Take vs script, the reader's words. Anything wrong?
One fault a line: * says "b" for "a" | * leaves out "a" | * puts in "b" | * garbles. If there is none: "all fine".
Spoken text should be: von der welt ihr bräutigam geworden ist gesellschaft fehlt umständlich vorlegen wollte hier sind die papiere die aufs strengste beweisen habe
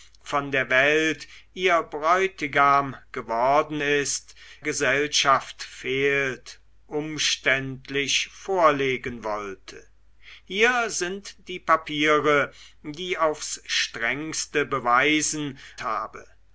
all fine